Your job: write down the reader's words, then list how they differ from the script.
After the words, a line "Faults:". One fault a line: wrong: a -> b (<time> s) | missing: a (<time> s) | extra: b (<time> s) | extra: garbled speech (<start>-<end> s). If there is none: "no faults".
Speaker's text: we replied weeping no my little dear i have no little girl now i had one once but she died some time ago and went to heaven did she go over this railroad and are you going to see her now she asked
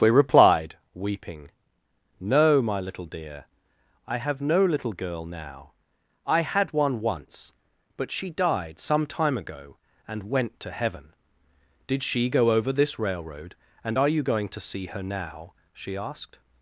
we replied weeping no my little dear i have no little girl now i had one once but she died some time ago and went to heaven did she go over this railroad and are you going to see her now she asked
Faults:
no faults